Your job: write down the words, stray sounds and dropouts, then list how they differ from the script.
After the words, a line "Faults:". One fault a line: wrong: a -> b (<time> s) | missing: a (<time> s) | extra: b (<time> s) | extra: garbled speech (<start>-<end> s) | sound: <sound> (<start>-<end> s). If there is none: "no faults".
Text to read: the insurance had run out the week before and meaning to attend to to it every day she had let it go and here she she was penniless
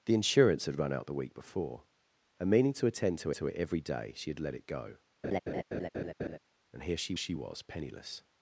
the insurance had run out the week before and meaning to attend to to it every day she had let it go and here she she was penniless
Faults:
sound: laugh (5.2-6.4 s)